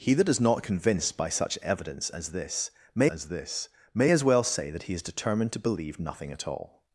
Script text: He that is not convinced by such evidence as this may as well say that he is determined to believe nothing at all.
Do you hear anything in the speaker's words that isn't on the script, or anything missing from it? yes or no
yes